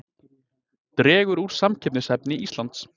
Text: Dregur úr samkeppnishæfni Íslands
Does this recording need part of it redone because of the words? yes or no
no